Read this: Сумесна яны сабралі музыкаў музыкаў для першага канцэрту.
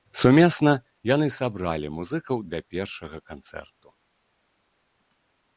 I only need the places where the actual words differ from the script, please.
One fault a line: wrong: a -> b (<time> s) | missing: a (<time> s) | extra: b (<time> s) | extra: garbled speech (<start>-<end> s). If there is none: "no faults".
missing: музыкаў (2.4 s)